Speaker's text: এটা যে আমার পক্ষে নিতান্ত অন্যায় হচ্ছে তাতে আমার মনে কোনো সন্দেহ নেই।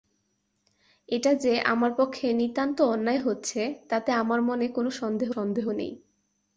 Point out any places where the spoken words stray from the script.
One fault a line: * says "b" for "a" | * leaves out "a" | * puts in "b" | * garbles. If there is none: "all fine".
* puts in "সন্দেহ"